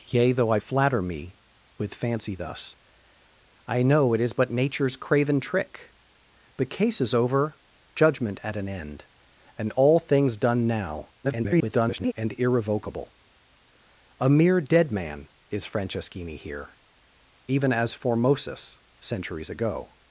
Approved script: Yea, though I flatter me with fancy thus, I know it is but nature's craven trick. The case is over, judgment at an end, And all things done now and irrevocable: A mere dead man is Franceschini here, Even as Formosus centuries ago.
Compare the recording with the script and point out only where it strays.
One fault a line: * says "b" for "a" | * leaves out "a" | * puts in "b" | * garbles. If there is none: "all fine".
* garbles